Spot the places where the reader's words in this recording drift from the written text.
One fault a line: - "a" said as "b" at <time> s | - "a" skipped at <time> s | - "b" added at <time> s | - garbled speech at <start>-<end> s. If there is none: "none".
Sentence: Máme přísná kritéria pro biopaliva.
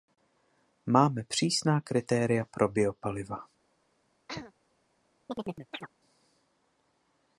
none